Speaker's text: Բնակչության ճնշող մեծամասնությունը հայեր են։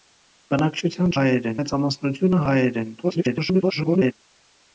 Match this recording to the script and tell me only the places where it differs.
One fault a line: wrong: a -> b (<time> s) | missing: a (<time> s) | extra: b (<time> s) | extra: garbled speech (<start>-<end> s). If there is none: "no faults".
wrong: ճնշող -> հայեր (1.2 s)
extra: garbled speech (3.0-4.1 s)